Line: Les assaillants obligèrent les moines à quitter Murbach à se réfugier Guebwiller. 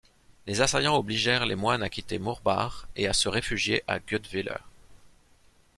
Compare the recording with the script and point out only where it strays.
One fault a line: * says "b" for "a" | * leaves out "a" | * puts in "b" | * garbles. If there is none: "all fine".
* puts in "et"
* puts in "à"